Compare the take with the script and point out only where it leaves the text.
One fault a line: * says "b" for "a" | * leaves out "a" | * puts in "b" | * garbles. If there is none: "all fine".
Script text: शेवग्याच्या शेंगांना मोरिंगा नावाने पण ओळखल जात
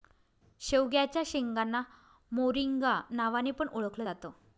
all fine